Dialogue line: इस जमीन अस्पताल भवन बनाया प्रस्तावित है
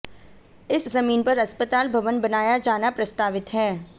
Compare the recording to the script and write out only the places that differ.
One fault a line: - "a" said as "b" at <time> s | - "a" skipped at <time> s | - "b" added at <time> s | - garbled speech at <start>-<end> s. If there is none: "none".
- "पर" added at 1.2 s
- "जाना" added at 2.6 s